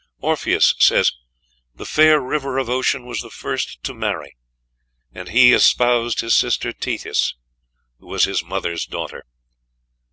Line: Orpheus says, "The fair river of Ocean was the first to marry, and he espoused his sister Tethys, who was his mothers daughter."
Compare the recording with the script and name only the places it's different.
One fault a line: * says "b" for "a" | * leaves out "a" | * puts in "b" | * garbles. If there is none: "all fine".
all fine